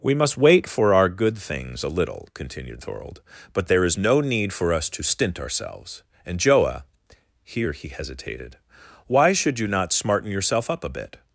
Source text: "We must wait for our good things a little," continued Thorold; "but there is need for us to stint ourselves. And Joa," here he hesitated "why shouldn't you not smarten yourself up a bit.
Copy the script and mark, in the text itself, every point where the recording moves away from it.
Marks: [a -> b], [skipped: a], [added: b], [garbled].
"We must wait for our good things a little," continued Thorold; "but there is [added: no] need for us to stint ourselves. And Joa," here he hesitated "why [shouldn't -> should] you not smarten yourself up a bit.